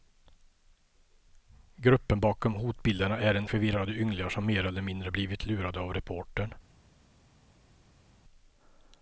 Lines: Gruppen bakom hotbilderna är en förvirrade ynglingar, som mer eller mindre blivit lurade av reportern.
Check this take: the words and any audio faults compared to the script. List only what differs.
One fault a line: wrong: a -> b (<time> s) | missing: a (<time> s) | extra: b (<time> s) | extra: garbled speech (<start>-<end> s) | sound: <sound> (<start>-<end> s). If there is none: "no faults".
no faults